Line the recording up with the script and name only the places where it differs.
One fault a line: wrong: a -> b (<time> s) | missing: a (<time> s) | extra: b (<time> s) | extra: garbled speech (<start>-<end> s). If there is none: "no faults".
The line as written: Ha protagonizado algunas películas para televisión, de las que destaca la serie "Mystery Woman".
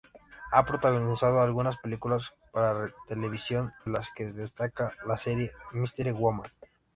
missing: de (3.7 s)